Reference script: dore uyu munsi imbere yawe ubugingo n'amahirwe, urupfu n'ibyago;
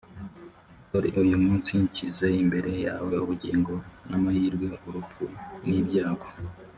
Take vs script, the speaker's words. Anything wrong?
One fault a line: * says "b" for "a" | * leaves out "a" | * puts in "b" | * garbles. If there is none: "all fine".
* puts in "nshyize"